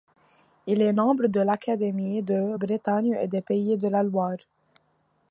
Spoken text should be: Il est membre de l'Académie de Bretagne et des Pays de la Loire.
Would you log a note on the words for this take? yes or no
no